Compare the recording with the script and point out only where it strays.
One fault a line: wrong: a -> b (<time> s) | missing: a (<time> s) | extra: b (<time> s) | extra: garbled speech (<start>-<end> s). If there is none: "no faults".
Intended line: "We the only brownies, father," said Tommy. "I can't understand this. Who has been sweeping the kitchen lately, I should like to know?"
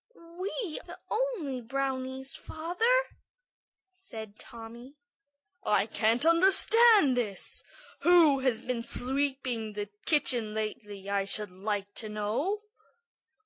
no faults